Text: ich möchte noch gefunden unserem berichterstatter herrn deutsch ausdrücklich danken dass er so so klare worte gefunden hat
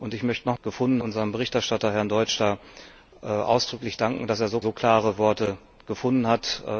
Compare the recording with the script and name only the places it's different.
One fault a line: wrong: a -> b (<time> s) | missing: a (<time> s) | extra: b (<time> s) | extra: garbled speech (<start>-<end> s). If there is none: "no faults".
no faults